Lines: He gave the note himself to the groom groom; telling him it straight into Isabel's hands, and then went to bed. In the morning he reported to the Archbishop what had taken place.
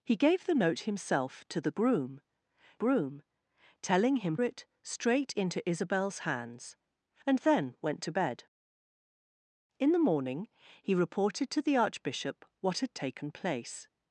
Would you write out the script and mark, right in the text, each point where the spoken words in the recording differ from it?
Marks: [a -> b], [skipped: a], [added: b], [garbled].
He gave the note himself to the groom groom; telling him it straight into Isabel's hands, and then went to bed. In the morning he reported to the Archbishop what had taken place.